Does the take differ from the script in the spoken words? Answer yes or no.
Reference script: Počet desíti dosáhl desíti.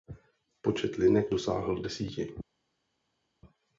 yes